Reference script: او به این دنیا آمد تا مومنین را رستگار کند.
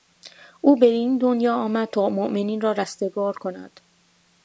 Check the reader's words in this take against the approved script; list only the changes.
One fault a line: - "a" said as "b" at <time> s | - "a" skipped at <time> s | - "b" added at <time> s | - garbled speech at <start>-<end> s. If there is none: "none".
none